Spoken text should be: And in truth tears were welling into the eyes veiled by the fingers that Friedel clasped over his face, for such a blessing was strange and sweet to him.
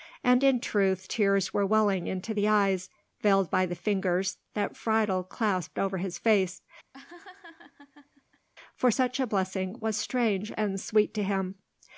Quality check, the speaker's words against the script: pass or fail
pass